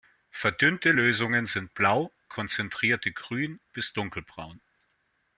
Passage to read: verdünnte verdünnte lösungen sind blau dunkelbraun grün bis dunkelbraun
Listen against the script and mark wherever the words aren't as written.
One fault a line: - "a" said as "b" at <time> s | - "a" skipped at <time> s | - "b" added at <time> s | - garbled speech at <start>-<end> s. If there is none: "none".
- "verdünnte" skipped at 0.9 s
- "dunkelbraun" said as "konzentrierte" at 2.3 s